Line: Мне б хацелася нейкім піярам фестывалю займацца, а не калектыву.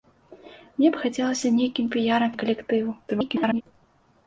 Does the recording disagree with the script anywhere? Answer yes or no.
yes